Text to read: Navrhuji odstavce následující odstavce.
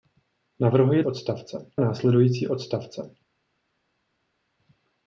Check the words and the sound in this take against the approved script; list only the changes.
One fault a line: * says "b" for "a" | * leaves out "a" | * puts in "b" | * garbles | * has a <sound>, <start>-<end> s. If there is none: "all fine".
all fine